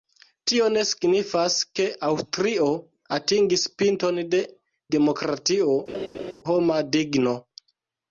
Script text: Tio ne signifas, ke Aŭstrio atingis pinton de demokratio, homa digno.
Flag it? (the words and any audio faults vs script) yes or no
yes